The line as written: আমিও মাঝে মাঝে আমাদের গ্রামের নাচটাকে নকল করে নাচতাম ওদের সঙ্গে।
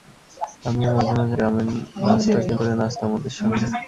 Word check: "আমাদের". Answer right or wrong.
wrong